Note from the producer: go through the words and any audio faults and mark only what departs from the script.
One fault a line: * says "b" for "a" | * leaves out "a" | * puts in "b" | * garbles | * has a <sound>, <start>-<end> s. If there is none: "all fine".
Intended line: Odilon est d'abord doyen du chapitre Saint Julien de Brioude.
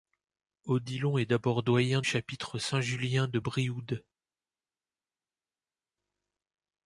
* leaves out "du"